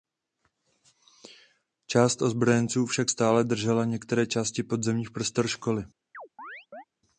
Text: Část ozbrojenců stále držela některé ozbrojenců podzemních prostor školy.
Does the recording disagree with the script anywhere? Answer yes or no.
yes